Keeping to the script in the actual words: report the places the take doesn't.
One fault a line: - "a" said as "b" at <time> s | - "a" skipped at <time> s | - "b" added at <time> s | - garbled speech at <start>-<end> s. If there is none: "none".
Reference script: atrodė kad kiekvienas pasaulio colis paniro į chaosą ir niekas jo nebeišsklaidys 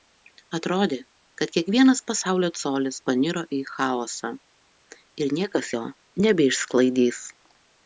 none